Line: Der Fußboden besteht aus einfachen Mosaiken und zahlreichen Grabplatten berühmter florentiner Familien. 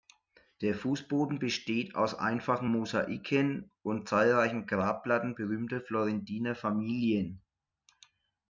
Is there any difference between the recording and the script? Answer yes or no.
no